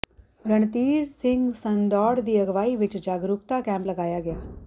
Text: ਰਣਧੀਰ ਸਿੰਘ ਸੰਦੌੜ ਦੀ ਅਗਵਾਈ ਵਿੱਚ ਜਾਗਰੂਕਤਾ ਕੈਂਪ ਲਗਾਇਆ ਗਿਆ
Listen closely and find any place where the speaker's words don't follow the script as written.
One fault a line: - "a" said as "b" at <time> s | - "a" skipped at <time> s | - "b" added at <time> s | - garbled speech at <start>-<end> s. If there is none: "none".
none